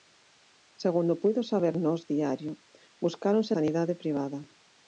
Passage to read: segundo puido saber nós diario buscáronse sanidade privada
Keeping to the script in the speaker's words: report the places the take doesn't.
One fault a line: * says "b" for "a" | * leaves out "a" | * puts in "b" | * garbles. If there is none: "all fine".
all fine